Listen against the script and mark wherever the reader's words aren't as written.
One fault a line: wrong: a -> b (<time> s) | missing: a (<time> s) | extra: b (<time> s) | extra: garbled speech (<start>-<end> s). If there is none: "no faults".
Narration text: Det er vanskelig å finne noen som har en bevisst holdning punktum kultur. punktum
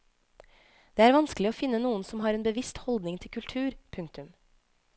wrong: punktum -> til (3.2 s)